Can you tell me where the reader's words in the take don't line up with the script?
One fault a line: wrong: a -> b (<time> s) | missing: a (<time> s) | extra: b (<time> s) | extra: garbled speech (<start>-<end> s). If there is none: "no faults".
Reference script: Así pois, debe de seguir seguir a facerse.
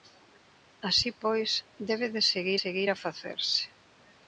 no faults